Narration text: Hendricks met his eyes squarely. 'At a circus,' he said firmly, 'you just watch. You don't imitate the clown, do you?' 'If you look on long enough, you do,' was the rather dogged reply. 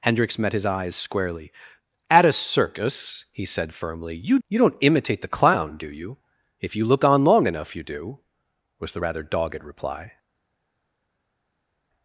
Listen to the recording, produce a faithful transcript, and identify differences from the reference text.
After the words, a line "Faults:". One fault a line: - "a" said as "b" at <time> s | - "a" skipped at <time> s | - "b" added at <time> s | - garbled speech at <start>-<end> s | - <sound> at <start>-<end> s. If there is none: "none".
Hendricks met his eyes squarely. 'At a circus,' he said firmly, 'you. You don't imitate the clown, do you?' 'If you look on long enough, you do,' was the rather dogged reply.
Faults:
- "just watch" skipped at 4.4 s